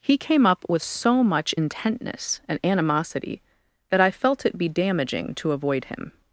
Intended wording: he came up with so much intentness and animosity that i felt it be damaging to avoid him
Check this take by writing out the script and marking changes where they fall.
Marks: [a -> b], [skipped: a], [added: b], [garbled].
he came up with so much intentness and animosity that i felt it be damaging to avoid him